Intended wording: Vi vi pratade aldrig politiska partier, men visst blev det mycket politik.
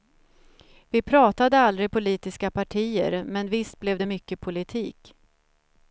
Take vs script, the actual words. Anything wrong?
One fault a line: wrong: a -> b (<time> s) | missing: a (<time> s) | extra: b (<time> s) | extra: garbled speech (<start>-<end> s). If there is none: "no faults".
missing: vi (1.0 s)